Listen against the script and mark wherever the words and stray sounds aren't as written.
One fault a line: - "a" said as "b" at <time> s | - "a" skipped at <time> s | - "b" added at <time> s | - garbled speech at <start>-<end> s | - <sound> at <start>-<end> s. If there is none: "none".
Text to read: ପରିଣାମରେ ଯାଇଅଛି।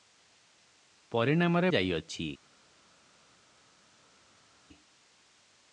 none